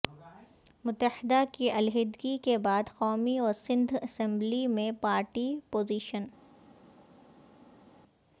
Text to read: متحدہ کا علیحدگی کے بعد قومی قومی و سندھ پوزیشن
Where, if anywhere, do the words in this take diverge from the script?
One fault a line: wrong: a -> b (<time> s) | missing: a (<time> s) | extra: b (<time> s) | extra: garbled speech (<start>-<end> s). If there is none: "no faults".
wrong: کا -> کی (1.5 s)
missing: قومی (3.4 s)
extra: اسمبلی میں پارٹی (4.0 s)